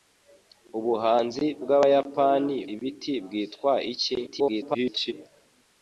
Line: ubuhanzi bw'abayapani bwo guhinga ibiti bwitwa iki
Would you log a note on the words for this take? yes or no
yes